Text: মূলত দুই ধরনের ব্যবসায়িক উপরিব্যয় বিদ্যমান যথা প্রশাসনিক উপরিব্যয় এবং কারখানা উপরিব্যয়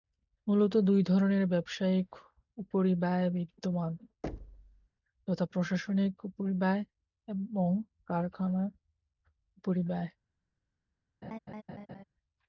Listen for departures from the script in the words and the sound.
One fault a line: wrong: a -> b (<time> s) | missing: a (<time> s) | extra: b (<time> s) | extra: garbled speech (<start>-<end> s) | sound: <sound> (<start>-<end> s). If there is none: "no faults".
sound: thud (4.2-4.9 s)
sound: laugh (11.2-12.0 s)